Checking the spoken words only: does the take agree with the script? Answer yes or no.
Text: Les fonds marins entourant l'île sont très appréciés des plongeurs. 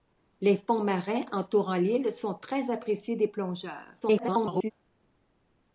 no